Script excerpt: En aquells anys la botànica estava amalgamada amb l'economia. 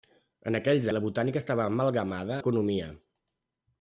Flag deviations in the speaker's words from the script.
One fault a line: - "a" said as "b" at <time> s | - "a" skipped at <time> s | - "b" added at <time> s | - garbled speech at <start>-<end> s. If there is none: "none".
- "anys" skipped at 0.9 s
- "amb" skipped at 2.4 s